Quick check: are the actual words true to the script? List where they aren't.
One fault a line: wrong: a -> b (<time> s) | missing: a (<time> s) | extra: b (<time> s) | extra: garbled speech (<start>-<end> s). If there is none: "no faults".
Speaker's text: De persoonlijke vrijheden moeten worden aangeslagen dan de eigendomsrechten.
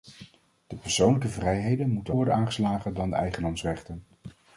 no faults